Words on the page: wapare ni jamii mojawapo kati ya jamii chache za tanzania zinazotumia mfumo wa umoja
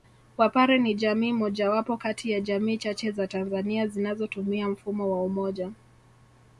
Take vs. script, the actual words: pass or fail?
pass